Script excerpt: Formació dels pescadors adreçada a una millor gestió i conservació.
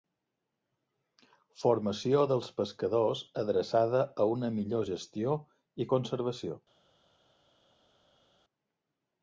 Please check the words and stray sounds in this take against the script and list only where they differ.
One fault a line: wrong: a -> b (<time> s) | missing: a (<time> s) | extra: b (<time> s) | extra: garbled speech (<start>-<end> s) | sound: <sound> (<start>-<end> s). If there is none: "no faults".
no faults